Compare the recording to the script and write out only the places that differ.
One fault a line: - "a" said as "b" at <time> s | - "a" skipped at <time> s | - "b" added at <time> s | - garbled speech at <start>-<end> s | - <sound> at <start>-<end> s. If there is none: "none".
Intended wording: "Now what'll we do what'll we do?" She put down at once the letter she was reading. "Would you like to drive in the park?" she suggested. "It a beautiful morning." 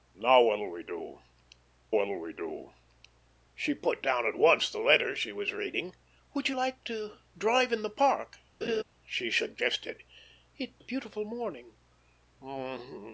- laugh at 8.6-8.8 s